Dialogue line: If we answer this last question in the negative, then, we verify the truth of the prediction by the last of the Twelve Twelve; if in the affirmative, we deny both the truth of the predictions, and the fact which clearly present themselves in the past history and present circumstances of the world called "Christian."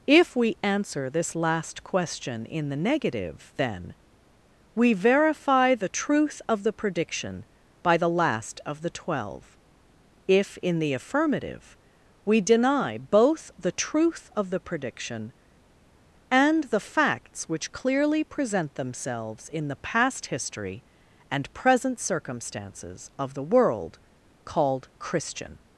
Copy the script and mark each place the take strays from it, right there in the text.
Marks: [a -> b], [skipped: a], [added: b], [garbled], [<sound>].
If we answer this last question in the negative, then, we verify the truth of the prediction by the last of the Twelve [skipped: Twelve;] if in the affirmative, we deny both the truth of the [predictions, -> prediction] and the [fact -> facts] which clearly present themselves in the past history and present circumstances of the world called "Christian."